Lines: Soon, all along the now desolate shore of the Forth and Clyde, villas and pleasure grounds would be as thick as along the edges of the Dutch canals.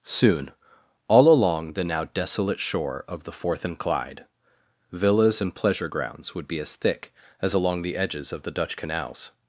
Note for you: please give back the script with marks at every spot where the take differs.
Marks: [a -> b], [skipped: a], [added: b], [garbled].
Soon, all along the now desolate shore of the Forth and Clyde, villas and pleasure grounds would be as thick as along the edges of the Dutch canals.